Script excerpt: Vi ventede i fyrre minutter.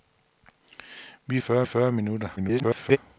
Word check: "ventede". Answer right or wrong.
wrong